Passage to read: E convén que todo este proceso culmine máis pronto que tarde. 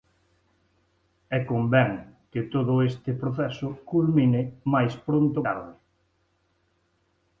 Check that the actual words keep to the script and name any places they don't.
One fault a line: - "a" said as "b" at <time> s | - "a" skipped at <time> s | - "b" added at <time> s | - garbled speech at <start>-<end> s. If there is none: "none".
- "que" skipped at 5.4 s